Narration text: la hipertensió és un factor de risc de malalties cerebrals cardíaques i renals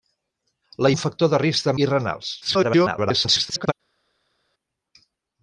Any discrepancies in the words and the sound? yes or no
yes